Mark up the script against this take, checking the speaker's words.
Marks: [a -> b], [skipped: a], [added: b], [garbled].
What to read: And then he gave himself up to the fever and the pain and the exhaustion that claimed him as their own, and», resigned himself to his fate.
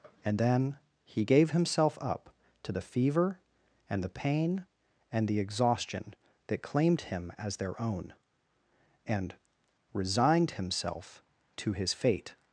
And then he gave himself up to the fever and the pain and the exhaustion that claimed him as their own, and», resigned himself to his fate.